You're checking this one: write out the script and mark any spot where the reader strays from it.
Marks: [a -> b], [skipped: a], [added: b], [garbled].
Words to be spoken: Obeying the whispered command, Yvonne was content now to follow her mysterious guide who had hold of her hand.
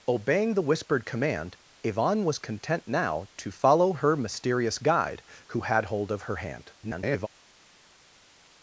Obeying the whispered command, Yvonne was content now to follow her mysterious guide who had hold of her hand. [garbled]